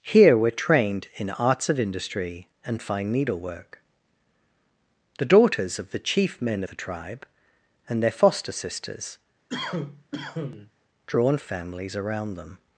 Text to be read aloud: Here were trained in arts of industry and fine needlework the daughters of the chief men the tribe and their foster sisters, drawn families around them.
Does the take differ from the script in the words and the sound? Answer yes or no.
yes